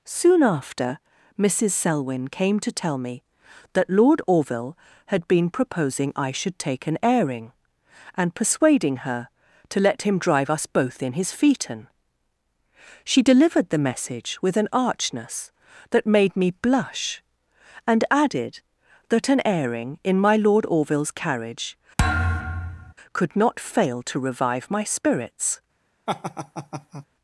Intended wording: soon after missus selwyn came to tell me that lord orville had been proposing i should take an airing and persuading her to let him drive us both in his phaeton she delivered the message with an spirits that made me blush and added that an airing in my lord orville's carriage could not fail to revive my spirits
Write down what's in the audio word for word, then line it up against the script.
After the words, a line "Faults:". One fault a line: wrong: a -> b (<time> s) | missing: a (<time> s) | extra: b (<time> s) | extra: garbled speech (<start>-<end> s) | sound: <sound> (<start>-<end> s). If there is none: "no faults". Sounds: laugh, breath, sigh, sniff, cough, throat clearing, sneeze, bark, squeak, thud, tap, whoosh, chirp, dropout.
soon after missus selwyn came to tell me that lord orville had been proposing i should take an airing and persuading her to let him drive us both in his phaeton she delivered the message with an archness that made me blush and added that an airing in my lord orville's carriage could not fail to revive my spirits
Faults:
wrong: spirits -> archness (14.7 s)
sound: thud (22.0-22.9 s)
sound: laugh (26.1-27.1 s)